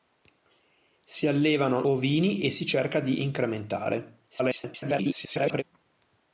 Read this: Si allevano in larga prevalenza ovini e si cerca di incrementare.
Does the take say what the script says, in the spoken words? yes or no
no